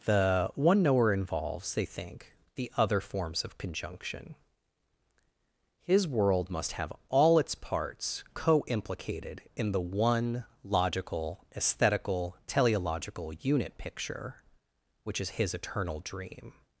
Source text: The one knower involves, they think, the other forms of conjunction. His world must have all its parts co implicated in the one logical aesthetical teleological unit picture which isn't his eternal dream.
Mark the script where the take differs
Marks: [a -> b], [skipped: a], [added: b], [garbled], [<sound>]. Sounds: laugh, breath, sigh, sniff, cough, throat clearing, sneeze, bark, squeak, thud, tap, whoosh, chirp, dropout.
The one knower involves, they think, the other forms of conjunction. His world must have all its parts co implicated in the one logical aesthetical teleological unit picture which [isn't -> is] his eternal dream.